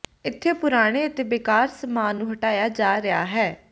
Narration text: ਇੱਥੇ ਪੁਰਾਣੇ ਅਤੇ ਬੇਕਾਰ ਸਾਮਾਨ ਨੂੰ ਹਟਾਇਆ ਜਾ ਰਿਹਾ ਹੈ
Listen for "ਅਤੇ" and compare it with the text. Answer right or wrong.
right